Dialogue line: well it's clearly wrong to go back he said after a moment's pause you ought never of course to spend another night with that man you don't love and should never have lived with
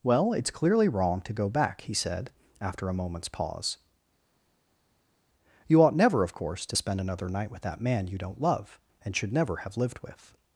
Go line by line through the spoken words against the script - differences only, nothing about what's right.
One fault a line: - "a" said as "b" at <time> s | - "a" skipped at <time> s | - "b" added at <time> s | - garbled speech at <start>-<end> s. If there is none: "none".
none